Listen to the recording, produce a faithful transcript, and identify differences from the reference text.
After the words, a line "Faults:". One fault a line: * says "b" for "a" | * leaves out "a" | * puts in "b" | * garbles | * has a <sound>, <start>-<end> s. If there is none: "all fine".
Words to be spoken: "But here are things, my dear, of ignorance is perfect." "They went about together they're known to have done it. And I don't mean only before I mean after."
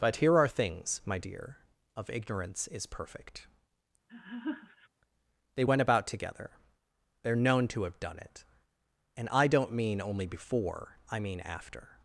"But here are things, my dear, of ignorance is perfect." "They went about together they're known to have done it. And I don't mean only before I mean after."
Faults:
* has a laugh, 4.1-4.9 s